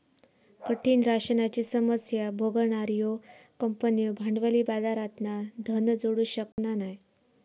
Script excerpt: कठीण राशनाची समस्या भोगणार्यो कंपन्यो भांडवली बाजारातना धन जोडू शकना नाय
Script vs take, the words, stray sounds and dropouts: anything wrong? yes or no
yes